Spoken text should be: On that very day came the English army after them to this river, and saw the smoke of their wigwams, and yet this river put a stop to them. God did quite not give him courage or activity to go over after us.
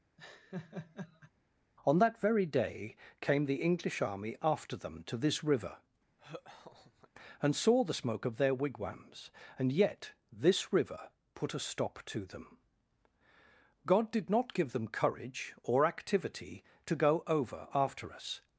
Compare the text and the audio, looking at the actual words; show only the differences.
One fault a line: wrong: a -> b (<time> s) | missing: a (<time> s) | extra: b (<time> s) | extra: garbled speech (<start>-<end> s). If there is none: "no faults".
missing: quite (14.3 s)
wrong: him -> them (14.7 s)